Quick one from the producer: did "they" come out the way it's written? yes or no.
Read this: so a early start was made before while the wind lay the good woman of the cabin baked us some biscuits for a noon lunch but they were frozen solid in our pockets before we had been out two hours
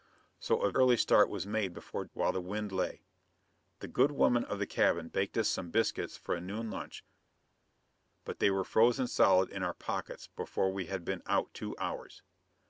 yes